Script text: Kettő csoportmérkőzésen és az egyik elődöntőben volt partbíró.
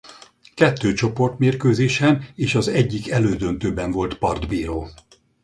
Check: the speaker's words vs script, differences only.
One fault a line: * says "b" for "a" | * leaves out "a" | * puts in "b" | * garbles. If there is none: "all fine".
all fine